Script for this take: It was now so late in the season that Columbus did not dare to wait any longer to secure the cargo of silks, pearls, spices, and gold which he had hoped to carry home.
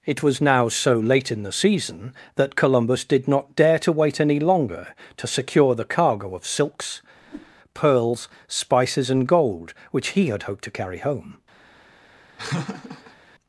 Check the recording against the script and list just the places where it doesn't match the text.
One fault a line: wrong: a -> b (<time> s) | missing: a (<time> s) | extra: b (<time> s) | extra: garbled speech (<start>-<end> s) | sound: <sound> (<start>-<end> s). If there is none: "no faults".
sound: whoosh (7.2-7.5 s)
sound: laugh (12.4-13.2 s)